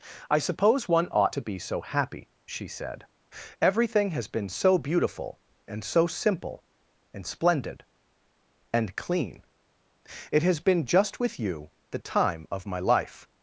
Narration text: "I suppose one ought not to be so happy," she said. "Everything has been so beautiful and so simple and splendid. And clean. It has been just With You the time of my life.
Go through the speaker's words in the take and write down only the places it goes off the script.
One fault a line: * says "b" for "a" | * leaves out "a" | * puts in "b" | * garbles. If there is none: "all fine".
* leaves out "not"